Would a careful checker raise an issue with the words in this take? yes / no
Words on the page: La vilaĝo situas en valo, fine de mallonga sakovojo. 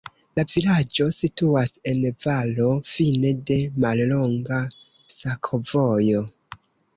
no